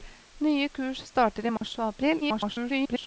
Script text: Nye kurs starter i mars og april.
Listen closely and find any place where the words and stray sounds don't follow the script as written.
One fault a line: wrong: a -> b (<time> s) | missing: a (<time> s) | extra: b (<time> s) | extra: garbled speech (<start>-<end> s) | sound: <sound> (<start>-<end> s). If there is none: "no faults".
sound: dropout (1.6-1.6 s)
extra: garbled speech (2.2-3.1 s)